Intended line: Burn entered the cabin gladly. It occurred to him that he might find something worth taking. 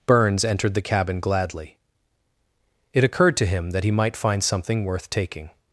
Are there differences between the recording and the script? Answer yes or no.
yes